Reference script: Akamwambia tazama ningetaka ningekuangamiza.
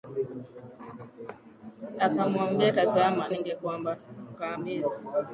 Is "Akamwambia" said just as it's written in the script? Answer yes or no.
yes